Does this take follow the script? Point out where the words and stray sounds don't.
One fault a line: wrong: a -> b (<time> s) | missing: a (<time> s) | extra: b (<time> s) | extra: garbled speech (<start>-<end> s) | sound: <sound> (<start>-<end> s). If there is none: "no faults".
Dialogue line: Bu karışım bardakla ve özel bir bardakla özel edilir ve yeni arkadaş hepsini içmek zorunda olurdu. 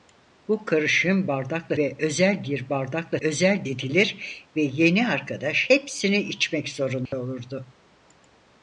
sound: dropout (7.1-7.1 s)